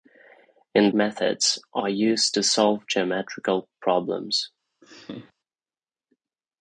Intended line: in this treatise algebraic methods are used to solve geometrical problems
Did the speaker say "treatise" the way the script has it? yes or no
no